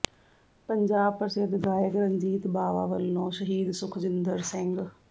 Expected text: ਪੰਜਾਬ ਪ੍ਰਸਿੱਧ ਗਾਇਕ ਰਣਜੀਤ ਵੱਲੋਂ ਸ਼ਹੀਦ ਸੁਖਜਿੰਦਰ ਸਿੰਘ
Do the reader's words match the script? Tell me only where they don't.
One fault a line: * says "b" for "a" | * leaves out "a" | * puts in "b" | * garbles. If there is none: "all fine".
* puts in "ਬਾਵਾ"